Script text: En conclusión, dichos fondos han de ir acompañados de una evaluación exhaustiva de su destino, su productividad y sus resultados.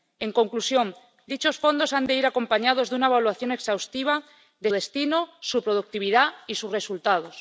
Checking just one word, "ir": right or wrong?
right